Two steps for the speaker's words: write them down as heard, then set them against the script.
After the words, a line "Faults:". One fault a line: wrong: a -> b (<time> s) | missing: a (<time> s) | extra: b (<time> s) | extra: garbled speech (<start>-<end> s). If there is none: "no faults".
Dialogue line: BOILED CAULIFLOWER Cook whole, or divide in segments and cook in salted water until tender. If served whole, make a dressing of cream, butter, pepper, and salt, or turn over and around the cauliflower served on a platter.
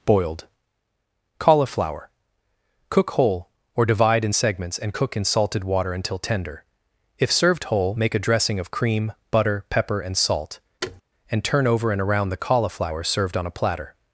BOILED CAULIFLOWER Cook whole, or divide in segments and cook in salted water until tender. If served whole, make a dressing of cream, butter, pepper, and salt, and turn over and around the cauliflower served on a platter.
Faults:
wrong: or -> and (11.3 s)